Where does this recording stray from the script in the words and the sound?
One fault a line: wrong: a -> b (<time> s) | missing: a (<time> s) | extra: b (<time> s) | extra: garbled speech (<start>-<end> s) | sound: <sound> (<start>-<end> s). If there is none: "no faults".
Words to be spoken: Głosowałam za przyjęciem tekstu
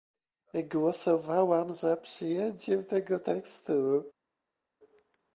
extra: tego (2.8 s)